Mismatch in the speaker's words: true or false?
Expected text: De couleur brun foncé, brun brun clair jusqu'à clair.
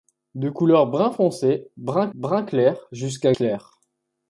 false